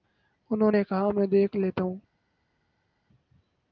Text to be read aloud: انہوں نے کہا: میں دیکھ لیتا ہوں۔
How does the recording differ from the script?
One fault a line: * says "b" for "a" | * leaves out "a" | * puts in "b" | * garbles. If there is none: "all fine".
all fine